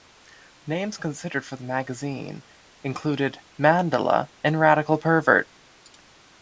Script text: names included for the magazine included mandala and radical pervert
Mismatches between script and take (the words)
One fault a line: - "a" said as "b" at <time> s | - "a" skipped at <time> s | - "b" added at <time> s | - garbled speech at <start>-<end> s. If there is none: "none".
- "included" said as "considered" at 1.0 s